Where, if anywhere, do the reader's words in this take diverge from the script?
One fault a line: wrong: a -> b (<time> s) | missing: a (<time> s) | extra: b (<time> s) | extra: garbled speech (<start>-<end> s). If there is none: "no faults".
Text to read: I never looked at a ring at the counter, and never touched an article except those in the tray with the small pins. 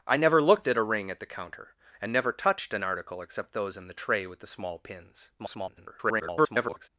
extra: garbled speech (5.4-6.9 s)